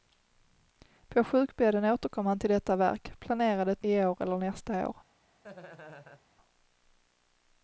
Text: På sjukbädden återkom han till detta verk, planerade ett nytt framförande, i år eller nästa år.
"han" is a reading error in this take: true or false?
false